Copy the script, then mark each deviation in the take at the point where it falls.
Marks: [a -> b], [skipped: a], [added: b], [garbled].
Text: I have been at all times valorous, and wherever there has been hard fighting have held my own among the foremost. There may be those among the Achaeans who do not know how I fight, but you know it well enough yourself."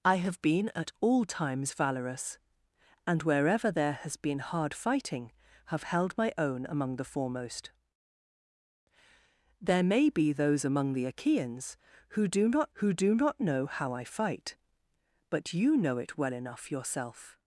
I have been at all times valorous, and wherever there has been hard fighting have held my own among the foremost. There may be those among the Achaeans who do not [added: who do not] know how I fight, but you know it well enough yourself."